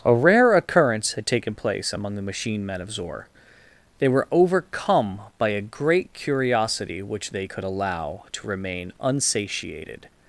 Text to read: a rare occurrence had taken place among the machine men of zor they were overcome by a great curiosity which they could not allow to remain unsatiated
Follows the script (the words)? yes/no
no